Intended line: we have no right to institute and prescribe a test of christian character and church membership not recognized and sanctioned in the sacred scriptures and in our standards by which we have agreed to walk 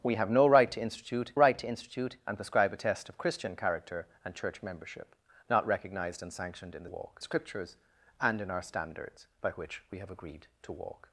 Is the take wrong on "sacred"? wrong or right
wrong